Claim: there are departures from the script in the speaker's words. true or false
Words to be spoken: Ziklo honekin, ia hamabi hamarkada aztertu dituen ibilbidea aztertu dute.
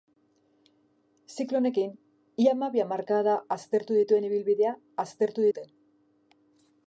false